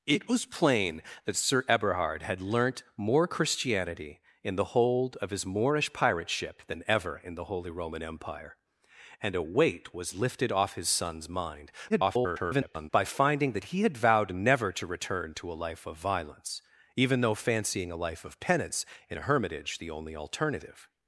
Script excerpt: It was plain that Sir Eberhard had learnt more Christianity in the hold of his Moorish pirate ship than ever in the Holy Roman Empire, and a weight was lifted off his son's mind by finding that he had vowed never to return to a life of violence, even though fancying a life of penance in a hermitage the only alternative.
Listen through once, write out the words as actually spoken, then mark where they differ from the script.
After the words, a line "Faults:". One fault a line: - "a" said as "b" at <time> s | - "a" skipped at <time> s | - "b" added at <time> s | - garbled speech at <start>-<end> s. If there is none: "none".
It was plain that Sir Eberhard had learnt more Christianity in the hold of his Moorish pirate ship than ever in the Holy Roman Empire, and a weight was lifted off his son's mind [garbled] by finding that he had vowed never to return to a life of violence, even though fancying a life of penance in a hermitage the only alternative.
Faults:
- garbled speech at 11.9-12.9 s